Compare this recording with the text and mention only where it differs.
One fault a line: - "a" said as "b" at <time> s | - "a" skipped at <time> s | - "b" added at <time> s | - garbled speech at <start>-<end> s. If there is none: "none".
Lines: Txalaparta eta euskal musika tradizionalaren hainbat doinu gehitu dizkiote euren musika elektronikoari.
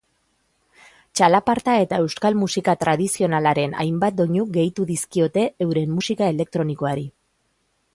none